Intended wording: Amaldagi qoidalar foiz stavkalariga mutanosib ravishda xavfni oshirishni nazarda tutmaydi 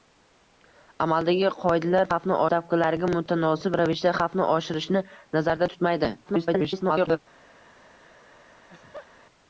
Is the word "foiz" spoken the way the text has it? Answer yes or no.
no